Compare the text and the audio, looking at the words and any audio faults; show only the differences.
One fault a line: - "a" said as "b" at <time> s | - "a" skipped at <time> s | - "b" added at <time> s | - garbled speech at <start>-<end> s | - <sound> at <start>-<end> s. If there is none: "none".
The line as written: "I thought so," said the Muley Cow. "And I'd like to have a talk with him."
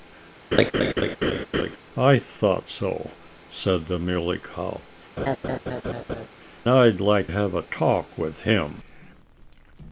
- laugh at 0.5-1.8 s
- "And" skipped at 4.8 s
- laugh at 5.2-6.3 s
- "to" skipped at 7.3 s